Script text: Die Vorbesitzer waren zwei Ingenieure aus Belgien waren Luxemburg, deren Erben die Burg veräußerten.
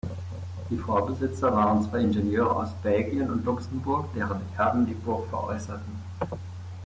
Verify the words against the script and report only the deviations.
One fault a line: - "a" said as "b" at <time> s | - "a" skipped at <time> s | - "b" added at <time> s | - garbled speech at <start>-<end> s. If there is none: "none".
- "waren" said as "und" at 3.3 s